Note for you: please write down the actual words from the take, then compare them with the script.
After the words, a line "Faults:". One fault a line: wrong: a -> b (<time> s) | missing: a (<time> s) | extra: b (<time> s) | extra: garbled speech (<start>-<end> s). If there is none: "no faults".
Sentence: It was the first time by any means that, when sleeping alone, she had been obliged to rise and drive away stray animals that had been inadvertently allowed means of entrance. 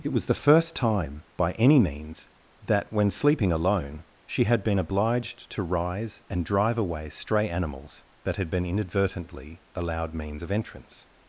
It was the first time by any means that, when sleeping alone, she had been obliged to rise and drive away stray animals that had been inadvertently allowed means of entrance.
Faults:
no faults